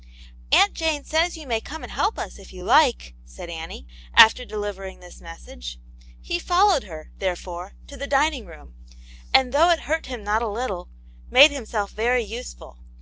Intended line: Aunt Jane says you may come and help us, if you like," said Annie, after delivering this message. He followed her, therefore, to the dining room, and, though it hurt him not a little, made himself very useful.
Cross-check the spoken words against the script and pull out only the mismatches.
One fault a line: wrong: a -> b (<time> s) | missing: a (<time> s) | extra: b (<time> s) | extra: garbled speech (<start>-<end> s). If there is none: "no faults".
no faults